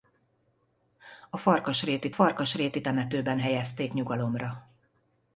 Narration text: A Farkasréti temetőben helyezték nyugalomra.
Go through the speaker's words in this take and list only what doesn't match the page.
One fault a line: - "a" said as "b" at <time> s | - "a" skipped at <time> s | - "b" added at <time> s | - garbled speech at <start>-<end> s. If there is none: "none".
- "Farkasréti" added at 2.1 s